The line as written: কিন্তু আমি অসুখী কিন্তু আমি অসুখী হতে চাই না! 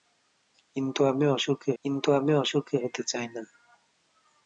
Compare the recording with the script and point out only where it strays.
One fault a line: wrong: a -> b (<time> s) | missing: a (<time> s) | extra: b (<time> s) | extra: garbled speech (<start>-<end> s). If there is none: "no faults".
no faults